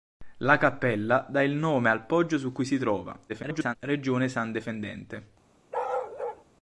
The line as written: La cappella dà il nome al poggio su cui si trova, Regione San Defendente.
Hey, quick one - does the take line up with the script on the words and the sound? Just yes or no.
no